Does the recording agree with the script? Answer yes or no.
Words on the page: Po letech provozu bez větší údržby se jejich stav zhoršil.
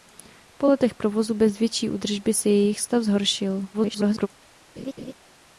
no